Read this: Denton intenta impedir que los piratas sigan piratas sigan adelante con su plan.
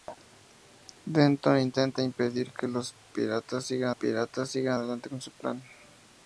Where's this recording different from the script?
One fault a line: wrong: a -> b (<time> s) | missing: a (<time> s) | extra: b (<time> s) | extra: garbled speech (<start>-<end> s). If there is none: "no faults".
no faults